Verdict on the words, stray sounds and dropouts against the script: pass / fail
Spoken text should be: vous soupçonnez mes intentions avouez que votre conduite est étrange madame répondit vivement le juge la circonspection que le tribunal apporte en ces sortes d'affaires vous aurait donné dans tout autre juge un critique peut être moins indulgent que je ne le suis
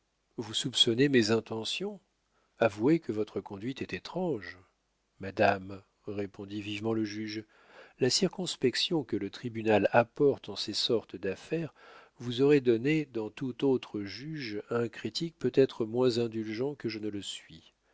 pass